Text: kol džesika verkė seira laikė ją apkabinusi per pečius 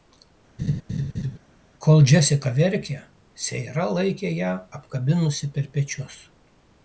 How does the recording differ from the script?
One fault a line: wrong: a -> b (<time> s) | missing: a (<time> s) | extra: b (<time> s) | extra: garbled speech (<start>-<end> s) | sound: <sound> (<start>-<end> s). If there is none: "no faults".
sound: laugh (0.6-1.4 s)